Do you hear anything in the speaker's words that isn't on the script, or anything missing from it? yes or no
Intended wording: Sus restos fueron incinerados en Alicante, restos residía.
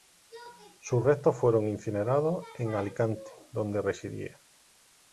yes